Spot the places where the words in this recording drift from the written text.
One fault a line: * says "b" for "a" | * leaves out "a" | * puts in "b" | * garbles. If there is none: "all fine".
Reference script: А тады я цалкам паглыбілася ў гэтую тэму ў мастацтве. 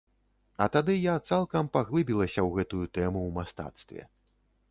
all fine